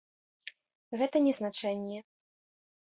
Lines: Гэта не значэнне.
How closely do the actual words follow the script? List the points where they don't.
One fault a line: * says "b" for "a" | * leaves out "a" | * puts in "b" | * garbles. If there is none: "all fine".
all fine